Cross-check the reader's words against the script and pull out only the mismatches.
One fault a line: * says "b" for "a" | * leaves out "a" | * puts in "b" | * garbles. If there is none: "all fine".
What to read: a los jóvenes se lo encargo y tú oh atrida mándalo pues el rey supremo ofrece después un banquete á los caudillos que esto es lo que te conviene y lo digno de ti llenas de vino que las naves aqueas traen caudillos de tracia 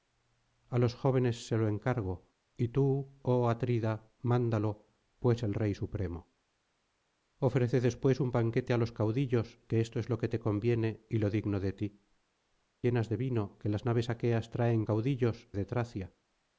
all fine